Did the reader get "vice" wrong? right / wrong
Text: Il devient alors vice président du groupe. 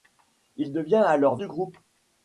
wrong